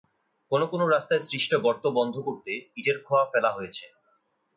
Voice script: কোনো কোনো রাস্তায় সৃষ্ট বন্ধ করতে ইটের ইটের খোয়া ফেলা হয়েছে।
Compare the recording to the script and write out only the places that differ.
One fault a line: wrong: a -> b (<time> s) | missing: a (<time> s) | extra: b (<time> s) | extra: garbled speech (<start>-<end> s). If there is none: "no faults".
extra: গর্ত (1.6 s)
missing: ইটের (3.0 s)